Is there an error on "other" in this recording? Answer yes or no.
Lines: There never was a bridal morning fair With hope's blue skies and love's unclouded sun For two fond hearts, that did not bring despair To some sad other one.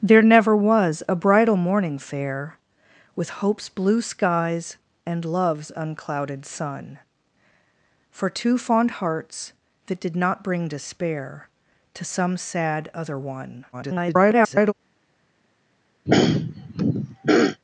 no